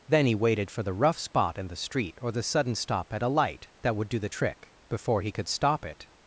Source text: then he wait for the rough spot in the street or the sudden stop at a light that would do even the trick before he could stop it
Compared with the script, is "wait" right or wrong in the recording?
wrong